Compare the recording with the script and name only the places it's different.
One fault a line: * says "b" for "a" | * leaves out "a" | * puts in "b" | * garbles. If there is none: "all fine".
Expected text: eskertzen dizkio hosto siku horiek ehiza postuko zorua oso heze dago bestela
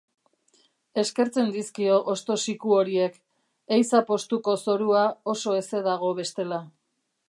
all fine